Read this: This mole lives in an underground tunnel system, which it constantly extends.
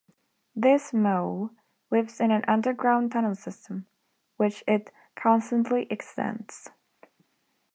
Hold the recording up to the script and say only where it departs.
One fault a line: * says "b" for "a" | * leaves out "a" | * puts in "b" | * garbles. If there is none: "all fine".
all fine